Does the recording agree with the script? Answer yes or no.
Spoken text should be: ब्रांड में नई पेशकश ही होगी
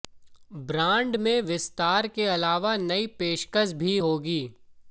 no